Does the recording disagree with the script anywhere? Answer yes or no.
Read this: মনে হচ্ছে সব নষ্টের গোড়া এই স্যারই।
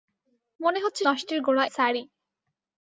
yes